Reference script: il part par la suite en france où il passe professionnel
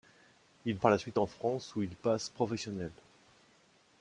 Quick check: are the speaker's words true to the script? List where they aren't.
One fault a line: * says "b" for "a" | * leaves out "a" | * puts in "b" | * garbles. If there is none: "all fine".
* leaves out "part"